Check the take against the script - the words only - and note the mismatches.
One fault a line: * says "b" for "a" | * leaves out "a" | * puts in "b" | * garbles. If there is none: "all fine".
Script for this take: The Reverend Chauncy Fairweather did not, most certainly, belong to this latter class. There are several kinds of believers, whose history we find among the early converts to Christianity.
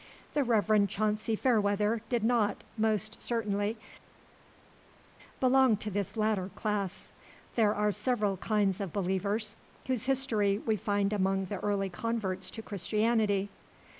all fine